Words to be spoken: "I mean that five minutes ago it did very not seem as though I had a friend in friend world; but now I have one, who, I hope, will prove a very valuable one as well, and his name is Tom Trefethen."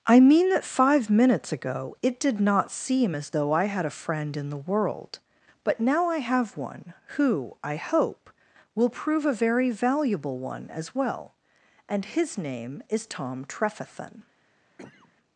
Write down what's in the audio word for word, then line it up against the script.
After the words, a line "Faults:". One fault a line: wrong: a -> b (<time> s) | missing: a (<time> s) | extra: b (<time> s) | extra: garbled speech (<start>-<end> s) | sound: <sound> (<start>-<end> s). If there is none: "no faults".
"I mean that five minutes ago it did not seem as though I had a friend in the world; but now I have one, who, I hope, will prove a very valuable one as well, and his name is Tom Trefethen."
Faults:
missing: very (2.4 s)
wrong: friend -> the (4.5 s)
sound: cough (14.8-15.1 s)